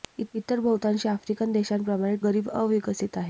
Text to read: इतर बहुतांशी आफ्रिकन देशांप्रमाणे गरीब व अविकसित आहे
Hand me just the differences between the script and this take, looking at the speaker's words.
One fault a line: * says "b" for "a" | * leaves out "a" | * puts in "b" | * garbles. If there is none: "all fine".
all fine